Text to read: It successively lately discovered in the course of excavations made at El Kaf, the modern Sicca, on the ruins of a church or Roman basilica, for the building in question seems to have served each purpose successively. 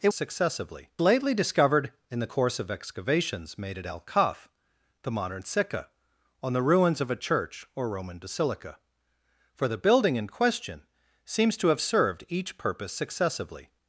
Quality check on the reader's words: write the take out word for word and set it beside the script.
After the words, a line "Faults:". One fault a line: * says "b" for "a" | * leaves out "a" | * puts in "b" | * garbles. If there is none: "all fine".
It successively lately discovered in the course of excavations made at El Kaf, the modern Sicca, on the ruins of a church or Roman basilica, for the building in question seems to have served each purpose successively.
Faults:
all fine